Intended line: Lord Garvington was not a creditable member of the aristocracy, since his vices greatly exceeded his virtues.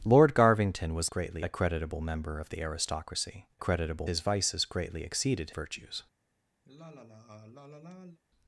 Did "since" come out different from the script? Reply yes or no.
yes